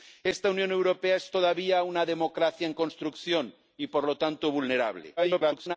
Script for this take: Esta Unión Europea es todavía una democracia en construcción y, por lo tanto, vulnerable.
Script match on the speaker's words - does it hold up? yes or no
no